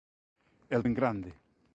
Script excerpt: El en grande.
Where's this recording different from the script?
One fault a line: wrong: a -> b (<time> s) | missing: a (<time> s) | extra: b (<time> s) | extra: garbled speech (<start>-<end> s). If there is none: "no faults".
no faults